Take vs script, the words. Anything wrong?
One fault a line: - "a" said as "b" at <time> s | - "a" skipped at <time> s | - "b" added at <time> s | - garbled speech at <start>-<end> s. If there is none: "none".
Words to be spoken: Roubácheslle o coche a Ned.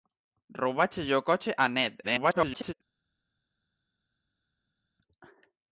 - garbled speech at 2.0-2.7 s